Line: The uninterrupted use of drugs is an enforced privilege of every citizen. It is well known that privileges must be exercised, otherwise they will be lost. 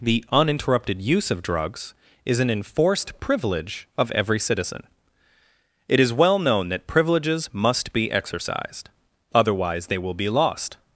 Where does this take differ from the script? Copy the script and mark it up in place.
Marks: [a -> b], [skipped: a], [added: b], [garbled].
The uninterrupted use of drugs is an enforced privilege of every citizen. It is well known that privileges must be exercised, otherwise they will be lost.